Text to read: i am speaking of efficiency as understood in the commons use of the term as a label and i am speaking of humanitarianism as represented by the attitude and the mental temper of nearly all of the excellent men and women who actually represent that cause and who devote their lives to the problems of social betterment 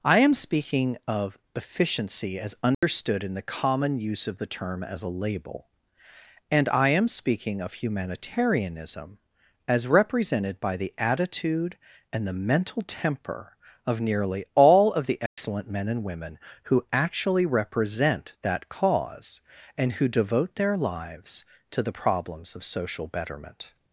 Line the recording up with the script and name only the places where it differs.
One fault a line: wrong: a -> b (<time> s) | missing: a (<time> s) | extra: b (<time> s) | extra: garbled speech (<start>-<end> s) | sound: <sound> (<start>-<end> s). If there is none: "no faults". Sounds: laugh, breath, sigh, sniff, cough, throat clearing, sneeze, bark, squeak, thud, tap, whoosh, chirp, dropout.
sound: dropout (2.7-2.8 s)
wrong: commons -> common (3.4 s)
sound: dropout (15.3-15.4 s)